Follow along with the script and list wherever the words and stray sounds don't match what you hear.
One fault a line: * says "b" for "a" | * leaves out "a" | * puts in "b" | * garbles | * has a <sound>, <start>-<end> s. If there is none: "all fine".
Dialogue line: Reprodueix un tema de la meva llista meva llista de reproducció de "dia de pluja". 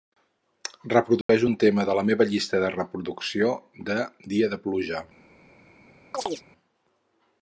* has a dropout, 1.2-1.3 s
* leaves out "meva llista"
* has a chirp, 6.1-6.4 s